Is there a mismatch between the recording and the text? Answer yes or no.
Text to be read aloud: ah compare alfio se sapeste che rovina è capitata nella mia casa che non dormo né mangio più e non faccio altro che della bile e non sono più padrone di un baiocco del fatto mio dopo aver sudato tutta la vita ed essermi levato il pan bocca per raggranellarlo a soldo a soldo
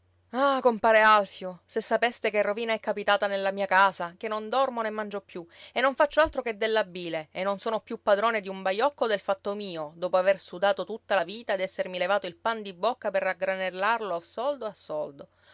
yes